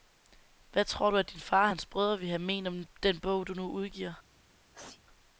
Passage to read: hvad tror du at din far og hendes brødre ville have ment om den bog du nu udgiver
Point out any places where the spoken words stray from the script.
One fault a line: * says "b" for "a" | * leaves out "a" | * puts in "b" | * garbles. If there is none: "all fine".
* says "hans" for "hendes"